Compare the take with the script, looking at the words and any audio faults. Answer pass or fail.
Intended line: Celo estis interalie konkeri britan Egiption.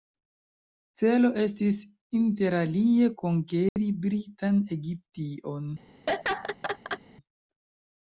fail